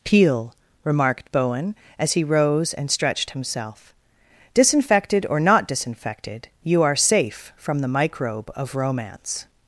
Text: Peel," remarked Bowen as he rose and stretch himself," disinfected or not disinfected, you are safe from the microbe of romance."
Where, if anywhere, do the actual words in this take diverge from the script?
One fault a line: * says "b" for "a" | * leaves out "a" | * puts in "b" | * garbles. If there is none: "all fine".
* says "stretched" for "stretch"